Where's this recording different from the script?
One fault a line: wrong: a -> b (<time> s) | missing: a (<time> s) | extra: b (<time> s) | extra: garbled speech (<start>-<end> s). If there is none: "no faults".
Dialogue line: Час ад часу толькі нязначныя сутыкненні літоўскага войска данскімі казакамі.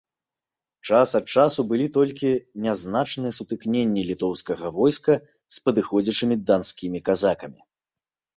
extra: былі (1.7 s)
extra: з падыходзячымі (5.6 s)